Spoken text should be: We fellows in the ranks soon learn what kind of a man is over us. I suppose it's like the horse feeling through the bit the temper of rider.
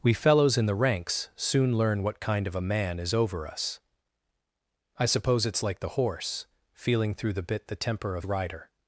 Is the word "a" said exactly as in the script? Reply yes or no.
yes